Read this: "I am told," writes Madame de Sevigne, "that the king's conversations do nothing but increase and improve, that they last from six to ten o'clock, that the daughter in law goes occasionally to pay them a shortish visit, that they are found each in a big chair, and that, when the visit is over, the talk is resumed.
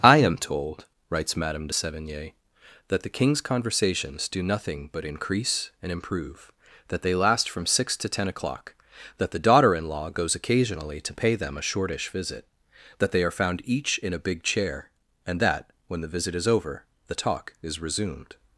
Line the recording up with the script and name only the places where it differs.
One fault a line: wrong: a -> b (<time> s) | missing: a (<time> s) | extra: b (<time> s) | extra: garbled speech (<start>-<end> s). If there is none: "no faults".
no faults